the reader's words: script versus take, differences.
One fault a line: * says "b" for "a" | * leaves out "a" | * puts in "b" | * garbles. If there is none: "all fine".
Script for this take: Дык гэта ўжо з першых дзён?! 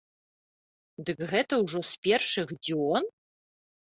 all fine